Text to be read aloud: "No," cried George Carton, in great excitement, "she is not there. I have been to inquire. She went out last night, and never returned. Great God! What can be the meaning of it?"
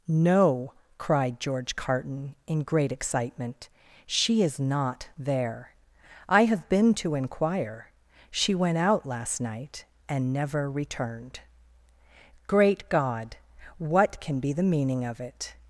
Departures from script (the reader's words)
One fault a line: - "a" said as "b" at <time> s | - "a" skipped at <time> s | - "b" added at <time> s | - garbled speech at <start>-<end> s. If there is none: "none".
none